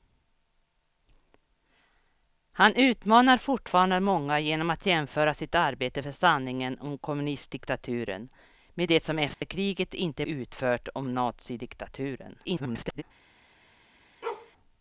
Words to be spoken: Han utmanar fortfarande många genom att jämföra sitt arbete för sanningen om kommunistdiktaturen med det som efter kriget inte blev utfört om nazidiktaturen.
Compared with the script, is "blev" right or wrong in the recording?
wrong